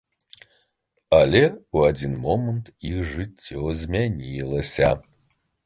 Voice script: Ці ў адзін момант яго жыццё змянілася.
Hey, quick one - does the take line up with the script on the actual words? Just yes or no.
no